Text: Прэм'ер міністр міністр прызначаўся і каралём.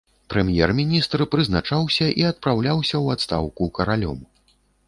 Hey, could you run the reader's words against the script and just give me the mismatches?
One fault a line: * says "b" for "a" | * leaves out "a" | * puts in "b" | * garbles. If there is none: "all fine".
* leaves out "міністр"
* puts in "адпраўляўся ў адстаўку"